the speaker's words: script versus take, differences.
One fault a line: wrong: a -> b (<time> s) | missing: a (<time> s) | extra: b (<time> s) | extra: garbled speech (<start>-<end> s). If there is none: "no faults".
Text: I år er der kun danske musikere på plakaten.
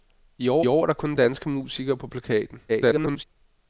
extra: år (0.7 s)
extra: garbled speech (2.7-3.2 s)